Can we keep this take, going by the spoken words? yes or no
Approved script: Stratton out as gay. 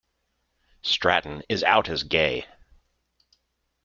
no